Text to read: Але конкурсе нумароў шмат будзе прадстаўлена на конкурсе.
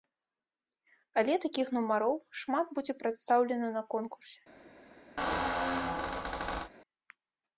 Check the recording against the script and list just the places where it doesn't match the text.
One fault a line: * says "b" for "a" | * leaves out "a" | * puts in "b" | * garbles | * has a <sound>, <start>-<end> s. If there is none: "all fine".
* says "такіх" for "конкурсе"
* has a squeak, 5.2-6.7 s